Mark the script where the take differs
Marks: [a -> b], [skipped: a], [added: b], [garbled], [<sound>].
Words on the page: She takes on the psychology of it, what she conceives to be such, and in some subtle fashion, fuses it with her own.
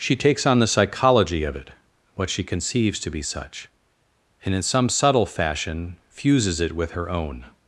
She takes on the psychology of it, what she conceives to be such, and in some subtle fashion, fuses it with her own.